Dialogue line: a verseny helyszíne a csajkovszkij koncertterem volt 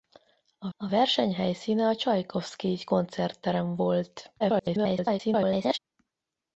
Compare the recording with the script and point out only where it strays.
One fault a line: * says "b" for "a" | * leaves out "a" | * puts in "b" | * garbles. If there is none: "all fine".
* puts in "a"
* garbles